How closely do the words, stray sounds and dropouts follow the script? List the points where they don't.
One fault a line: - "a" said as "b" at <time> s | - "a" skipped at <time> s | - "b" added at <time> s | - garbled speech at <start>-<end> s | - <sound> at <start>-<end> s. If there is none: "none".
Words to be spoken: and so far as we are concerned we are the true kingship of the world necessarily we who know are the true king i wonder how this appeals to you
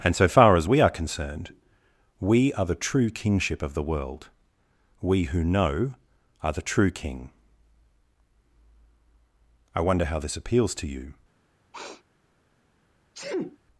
- "necessarily" skipped at 4.3 s
- sniff at 11.7-12.0 s
- sneeze at 13.1-13.6 s